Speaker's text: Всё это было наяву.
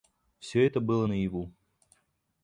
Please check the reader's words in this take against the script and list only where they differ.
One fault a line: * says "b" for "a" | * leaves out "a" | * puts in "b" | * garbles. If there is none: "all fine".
all fine